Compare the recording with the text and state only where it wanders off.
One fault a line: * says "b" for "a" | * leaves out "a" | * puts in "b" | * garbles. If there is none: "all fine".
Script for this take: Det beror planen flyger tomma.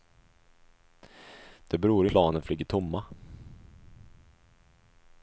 all fine